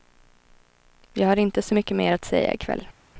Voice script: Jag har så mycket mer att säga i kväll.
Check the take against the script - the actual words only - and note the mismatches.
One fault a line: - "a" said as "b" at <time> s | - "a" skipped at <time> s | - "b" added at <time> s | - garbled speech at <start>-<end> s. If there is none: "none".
- "inte" added at 1.4 s